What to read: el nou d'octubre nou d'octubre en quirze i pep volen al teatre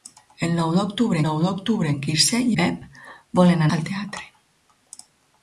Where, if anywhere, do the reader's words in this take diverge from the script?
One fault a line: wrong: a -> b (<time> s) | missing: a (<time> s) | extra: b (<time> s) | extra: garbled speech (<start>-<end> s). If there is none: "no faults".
no faults